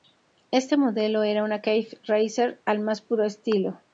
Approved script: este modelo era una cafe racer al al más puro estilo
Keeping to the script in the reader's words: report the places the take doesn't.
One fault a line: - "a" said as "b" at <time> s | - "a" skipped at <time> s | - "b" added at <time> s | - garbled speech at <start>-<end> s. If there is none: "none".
- "al" skipped at 2.8 s